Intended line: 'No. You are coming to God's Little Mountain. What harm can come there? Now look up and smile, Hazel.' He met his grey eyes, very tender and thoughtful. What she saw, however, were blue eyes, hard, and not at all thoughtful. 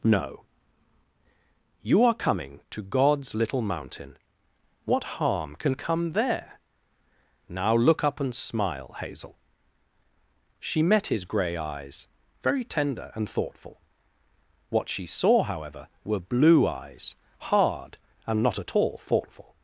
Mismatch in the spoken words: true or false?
true